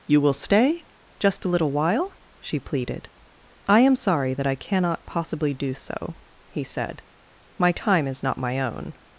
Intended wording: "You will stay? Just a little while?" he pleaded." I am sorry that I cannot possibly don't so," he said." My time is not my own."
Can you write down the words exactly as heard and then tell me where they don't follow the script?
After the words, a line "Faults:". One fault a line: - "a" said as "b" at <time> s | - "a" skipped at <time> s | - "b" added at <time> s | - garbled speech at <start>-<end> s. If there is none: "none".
"You will stay? Just a little while?" she pleaded." I am sorry that I cannot possibly do so," he said." My time is not my own."
Faults:
- "he" said as "she" at 2.4 s
- "don't" said as "do" at 5.5 s